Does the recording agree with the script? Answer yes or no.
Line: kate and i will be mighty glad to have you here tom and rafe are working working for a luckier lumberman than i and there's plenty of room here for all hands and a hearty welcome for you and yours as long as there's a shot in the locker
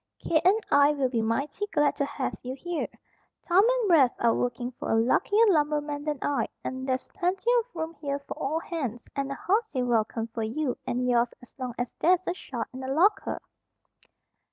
no